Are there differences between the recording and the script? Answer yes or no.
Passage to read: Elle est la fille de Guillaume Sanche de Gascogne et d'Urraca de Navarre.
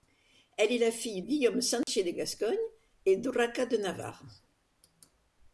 yes